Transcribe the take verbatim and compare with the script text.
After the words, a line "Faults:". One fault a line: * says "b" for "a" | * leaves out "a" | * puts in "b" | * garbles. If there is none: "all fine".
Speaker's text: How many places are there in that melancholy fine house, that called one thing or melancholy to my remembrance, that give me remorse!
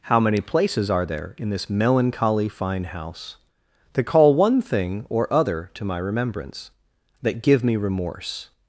How many places are there in this melancholy fine house, that call one thing or other to my remembrance, that give me remorse!
Faults:
* says "this" for "that"
* says "call" for "called"
* says "other" for "melancholy"